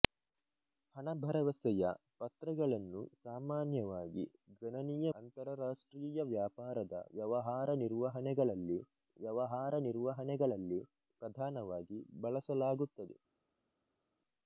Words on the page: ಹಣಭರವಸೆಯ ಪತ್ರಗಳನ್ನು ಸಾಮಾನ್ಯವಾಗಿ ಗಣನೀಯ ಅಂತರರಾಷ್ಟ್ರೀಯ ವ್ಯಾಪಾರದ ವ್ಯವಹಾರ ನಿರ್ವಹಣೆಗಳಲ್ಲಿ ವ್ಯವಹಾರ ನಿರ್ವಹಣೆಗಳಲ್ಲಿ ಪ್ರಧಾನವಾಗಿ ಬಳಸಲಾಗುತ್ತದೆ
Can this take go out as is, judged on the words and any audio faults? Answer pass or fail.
pass